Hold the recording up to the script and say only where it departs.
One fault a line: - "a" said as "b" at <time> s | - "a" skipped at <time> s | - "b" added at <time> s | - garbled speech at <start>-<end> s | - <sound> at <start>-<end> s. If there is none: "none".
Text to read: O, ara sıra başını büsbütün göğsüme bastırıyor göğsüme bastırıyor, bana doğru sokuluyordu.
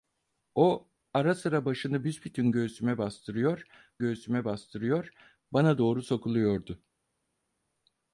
none